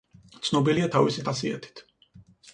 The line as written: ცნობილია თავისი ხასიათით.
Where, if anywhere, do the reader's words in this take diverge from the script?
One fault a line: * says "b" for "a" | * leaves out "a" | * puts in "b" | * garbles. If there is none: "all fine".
all fine